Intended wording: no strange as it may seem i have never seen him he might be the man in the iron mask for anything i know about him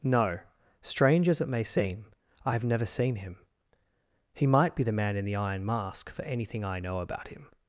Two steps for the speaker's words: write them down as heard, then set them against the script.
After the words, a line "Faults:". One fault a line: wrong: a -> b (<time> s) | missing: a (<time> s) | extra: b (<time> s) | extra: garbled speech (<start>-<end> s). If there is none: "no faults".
no strange as it may seem i have never seen him he might be the man in the iron mask for anything i know about him
Faults:
no faults